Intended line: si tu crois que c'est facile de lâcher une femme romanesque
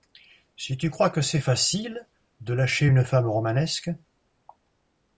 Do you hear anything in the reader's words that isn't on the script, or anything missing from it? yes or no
no